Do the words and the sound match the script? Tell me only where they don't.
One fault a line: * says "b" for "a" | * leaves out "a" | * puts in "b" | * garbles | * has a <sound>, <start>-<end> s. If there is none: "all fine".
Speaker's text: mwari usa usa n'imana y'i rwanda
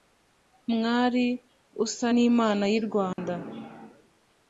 * leaves out "usa"
* has a dropout, 3.1-3.2 s